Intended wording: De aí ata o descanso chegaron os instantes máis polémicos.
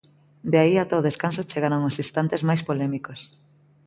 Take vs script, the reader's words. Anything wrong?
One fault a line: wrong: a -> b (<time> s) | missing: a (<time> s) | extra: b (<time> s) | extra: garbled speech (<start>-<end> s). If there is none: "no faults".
no faults